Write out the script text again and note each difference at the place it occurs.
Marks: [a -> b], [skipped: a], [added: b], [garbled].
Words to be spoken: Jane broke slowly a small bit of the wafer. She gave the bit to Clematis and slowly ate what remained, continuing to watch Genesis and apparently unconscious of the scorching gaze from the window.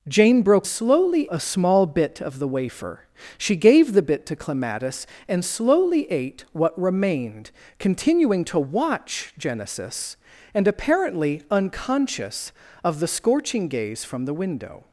Jane broke slowly a small bit of the wafer. She gave the bit to Clematis and slowly ate what remained, continuing to watch Genesis and apparently unconscious of the scorching gaze from the window.